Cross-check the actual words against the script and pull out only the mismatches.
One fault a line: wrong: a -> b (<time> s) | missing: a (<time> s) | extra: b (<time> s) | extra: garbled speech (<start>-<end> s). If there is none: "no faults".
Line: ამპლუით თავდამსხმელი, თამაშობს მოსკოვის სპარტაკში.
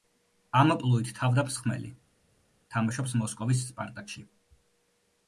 no faults